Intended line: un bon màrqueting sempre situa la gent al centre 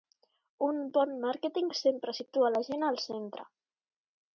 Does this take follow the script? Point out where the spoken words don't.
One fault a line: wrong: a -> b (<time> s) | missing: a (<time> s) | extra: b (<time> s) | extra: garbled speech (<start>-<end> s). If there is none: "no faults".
no faults